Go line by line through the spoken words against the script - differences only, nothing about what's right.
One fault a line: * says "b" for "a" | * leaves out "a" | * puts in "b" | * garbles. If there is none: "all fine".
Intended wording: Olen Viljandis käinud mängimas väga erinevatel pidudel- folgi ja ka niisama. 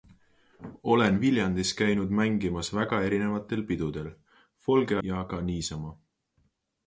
all fine